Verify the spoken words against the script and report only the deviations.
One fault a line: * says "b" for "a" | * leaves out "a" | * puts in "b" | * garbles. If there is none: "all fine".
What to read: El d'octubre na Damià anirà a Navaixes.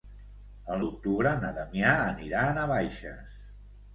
all fine